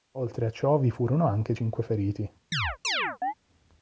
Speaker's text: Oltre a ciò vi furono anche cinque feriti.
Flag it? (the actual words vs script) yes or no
no